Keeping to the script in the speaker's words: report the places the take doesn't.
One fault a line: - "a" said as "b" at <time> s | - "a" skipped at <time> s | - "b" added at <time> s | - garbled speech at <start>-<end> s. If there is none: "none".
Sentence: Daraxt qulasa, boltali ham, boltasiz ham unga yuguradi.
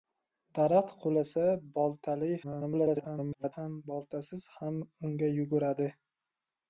- garbled speech at 2.4-3.5 s